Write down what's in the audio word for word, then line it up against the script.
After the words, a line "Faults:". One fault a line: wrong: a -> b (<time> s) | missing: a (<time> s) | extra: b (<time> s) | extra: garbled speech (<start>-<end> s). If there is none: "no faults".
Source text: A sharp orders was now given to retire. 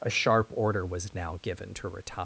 A sharp order was now given to retire.
Faults:
wrong: orders -> order (0.5 s)